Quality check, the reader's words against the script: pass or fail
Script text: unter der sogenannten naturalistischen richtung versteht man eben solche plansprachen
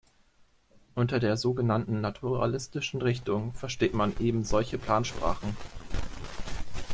pass